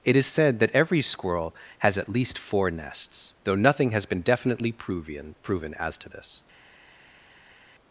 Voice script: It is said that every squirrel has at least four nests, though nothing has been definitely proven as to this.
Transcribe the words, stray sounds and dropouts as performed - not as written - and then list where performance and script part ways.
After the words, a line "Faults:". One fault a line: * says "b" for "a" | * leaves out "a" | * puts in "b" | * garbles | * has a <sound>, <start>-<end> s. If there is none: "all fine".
It is said that every squirrel has at least four nests, though nothing has been definitely proven proven as to this.
Faults:
* puts in "proven"